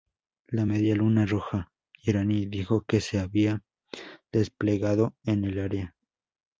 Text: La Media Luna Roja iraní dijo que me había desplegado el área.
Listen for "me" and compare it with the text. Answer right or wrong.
wrong